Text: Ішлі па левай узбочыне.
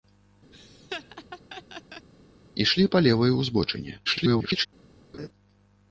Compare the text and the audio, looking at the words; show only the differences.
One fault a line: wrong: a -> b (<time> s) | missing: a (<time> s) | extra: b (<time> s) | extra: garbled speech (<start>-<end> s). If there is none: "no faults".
extra: garbled speech (4.1-4.7 s)